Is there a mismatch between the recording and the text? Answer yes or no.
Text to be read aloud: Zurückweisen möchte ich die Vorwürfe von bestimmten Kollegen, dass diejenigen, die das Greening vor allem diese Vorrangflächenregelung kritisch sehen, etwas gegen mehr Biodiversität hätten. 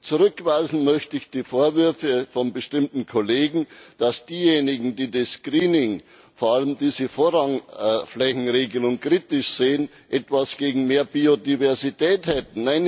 no